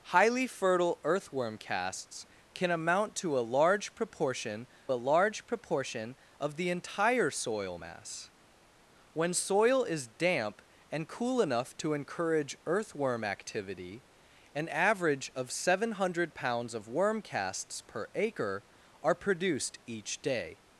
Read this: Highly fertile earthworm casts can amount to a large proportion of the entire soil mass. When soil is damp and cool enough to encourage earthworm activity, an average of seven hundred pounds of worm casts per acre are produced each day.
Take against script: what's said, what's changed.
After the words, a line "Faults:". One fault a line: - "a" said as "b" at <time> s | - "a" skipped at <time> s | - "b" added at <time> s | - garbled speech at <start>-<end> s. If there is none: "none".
Highly fertile earthworm casts can amount to a large proportion a large proportion of the entire soil mass. When soil is damp and cool enough to encourage earthworm activity, an average of seven hundred pounds of worm casts per acre are produced each day.
Faults:
- "a large proportion" added at 4.9 s